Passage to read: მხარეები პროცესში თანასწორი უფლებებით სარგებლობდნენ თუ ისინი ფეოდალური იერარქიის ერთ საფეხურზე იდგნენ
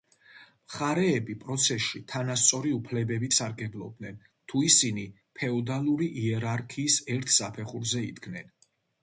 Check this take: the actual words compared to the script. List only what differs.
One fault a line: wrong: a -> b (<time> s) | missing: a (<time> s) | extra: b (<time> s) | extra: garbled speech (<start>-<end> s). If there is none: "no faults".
no faults